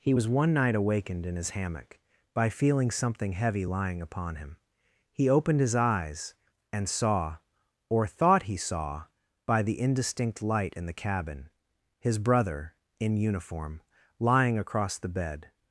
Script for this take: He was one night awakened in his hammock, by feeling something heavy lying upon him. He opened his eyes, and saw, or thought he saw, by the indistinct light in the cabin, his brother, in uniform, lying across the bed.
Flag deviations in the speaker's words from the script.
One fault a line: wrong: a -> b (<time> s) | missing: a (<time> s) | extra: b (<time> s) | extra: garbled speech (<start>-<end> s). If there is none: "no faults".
no faults